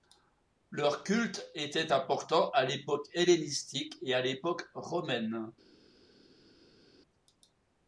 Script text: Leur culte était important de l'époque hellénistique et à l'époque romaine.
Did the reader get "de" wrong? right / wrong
wrong